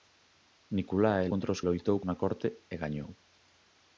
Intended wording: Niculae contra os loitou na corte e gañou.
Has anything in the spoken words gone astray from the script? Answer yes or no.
no